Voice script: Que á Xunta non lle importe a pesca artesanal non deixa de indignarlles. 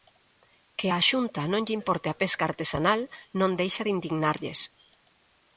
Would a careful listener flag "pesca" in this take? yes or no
no